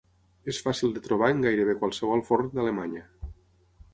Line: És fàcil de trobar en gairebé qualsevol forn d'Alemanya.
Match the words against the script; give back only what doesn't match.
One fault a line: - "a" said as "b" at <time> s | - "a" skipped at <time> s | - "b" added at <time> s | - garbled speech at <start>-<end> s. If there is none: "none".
none